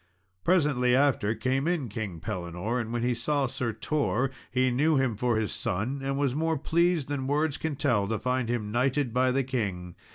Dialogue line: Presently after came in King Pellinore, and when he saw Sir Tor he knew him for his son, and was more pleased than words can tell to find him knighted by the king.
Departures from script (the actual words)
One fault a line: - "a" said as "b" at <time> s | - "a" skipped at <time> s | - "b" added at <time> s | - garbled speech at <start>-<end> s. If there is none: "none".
none